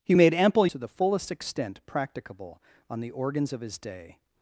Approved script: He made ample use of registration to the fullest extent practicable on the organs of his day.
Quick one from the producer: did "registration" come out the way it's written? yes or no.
no